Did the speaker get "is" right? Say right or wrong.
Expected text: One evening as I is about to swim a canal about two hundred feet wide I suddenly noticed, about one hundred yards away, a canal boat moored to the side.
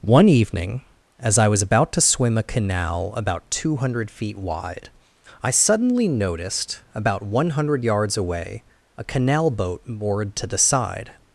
wrong